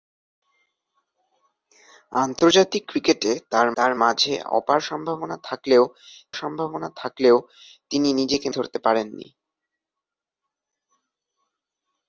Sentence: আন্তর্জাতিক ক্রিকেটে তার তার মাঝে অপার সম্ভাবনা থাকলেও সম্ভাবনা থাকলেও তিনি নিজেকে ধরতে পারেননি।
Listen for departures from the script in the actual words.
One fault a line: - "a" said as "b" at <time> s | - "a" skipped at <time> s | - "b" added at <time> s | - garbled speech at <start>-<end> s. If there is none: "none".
none